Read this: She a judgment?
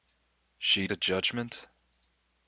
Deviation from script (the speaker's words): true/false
false